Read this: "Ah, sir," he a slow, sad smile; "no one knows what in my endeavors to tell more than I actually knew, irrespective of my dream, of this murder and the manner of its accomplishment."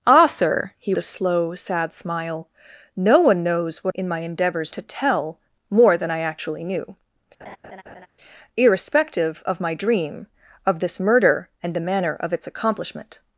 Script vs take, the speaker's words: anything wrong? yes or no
no